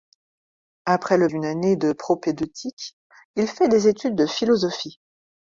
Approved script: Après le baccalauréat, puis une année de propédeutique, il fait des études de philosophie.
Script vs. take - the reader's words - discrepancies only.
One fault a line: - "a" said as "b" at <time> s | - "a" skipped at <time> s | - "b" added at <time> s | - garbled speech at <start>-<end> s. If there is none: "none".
- "baccalauréat puis" skipped at 1.3 s